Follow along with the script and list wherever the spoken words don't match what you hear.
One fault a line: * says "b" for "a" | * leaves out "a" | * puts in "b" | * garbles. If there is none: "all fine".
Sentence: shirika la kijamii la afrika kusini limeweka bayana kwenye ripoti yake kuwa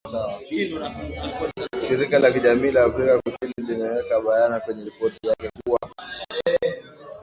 all fine